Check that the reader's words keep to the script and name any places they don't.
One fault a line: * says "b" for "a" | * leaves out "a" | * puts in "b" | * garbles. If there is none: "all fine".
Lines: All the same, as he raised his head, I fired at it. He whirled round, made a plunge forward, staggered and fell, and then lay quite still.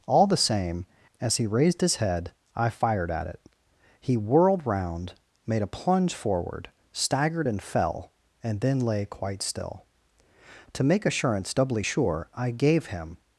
* puts in "To make assurance doubly sure I gave him"